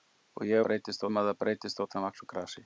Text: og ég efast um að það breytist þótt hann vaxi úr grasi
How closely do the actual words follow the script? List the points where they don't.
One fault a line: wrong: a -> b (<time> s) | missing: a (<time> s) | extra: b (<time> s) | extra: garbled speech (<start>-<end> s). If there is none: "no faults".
wrong: efast -> breytist (0.7 s)